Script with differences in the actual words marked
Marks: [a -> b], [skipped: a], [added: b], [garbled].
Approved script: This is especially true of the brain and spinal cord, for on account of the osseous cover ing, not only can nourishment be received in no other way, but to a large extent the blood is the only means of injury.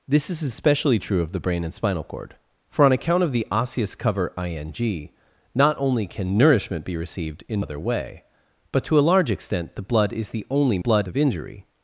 This is especially true of the brain and spinal cord, for on account of the osseous cover ing, not only can nourishment be received in [skipped: no] other way, but to a large extent the blood is the only [means -> blood] of injury.